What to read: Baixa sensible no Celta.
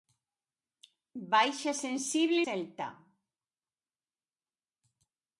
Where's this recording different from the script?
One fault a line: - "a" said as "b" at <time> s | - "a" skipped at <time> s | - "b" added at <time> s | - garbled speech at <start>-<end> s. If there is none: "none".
- "no" skipped at 2.5 s